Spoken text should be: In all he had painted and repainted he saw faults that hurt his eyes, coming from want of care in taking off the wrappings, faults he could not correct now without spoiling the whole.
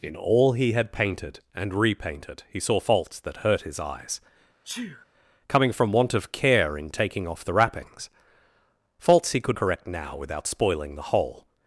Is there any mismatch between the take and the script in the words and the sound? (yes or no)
yes